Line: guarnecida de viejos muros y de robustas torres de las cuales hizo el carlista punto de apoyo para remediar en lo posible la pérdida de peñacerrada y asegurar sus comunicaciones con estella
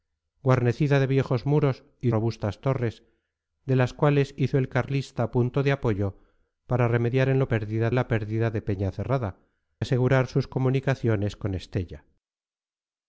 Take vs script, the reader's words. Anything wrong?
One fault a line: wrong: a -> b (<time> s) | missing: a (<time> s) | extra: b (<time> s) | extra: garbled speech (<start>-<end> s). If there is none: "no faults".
missing: de (2.1 s)
wrong: posible -> pérdida (7.5 s)
missing: y (9.4 s)